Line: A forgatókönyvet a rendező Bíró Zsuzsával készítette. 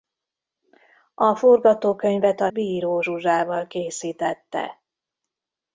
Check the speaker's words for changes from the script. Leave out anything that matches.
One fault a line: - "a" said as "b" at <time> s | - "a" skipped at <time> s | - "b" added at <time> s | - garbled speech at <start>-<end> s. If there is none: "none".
- "rendező" skipped at 2.5 s